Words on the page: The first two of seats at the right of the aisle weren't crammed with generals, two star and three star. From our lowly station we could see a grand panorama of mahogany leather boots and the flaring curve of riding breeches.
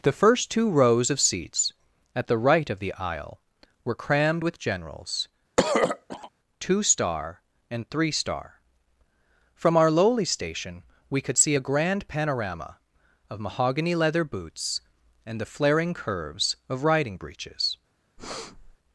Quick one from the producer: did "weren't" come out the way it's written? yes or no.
no